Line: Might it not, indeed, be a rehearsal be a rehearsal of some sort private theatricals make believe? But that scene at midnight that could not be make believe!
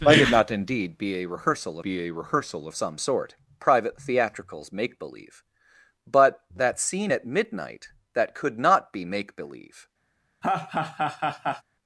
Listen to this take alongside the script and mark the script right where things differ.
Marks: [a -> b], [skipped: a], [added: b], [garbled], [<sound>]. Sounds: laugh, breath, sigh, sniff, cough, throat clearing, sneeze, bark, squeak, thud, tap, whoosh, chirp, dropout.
Might it not, indeed, be a rehearsal be a rehearsal of some sort private theatricals make believe? But that scene at midnight that could not be make believe! [laugh]